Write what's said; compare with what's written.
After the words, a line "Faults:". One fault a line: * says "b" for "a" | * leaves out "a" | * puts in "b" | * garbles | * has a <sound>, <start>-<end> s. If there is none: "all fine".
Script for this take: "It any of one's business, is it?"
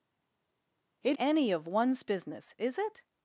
"It any of one's business, is it?"
Faults:
all fine